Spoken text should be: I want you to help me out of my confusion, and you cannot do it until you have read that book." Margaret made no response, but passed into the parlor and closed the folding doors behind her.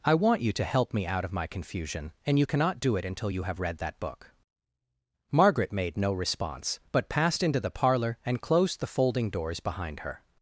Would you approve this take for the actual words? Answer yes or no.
yes